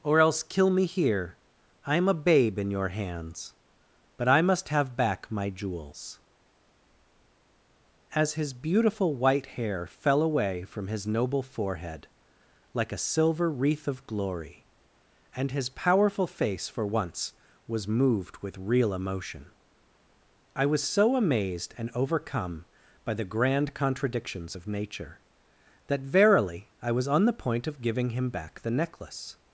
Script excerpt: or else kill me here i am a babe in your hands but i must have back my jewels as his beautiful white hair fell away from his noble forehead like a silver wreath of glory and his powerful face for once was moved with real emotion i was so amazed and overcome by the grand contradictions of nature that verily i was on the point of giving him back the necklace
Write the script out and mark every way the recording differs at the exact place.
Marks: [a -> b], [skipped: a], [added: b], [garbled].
or else kill me here i am a babe in your hands but i must have back my jewels as his beautiful white hair fell away from his noble forehead like a silver wreath of glory and his powerful face for once was moved with real emotion i was so amazed and overcome by the grand contradictions of nature that verily i was on the point of giving him back the necklace